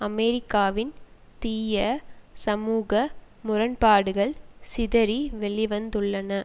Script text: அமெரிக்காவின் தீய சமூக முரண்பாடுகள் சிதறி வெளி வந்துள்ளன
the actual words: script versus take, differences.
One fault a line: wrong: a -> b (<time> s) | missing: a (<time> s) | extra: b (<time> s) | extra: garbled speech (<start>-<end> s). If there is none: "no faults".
no faults